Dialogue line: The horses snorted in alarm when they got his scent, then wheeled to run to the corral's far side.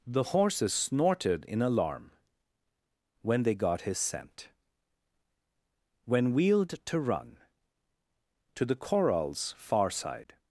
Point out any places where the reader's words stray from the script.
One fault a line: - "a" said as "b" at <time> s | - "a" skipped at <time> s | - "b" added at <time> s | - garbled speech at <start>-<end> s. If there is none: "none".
- "then" said as "when" at 6.0 s